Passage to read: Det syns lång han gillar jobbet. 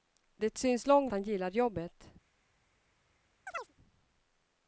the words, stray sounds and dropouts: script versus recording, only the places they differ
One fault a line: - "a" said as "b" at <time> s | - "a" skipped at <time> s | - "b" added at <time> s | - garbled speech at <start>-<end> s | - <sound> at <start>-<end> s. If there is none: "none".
- chirp at 3.5-3.7 s